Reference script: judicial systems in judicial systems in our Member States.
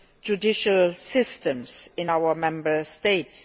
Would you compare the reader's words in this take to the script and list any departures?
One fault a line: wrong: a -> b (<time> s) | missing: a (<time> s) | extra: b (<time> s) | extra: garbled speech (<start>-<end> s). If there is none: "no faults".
missing: judicial systems in (2.1 s)